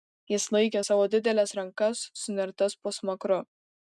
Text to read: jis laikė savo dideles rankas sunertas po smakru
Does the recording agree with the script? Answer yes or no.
yes